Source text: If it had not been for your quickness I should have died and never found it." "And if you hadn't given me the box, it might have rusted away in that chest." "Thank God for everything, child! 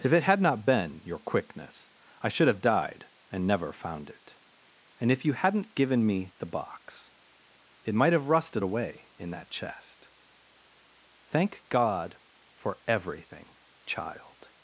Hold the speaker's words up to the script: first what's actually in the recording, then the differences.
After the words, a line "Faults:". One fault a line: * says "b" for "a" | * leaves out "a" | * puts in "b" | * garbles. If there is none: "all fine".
If it had not been your quickness I should have died and never found it." "And if you hadn't given me the box, it might have rusted away in that chest." "Thank God for everything, child!
Faults:
* leaves out "for"